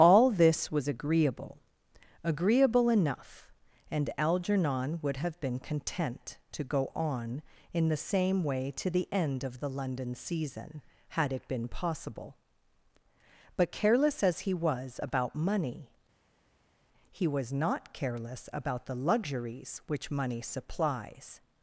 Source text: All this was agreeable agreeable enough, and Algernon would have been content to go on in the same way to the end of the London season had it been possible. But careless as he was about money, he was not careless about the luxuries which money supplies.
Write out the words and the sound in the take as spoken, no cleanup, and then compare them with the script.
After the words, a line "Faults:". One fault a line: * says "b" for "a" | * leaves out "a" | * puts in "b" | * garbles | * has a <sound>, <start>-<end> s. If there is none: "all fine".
All this was agreeable agreeable enough, and Algernon would have been content to go on in the same way to the end of the London season had it been possible. But careless as he was about money, he was not careless about the luxuries which money supplies.
Faults:
all fine